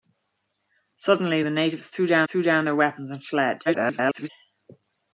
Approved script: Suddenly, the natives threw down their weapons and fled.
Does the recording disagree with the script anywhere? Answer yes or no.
yes